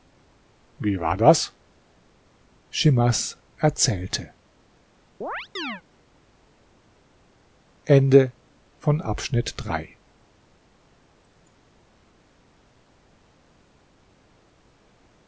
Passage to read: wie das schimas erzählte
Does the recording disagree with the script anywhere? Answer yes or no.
yes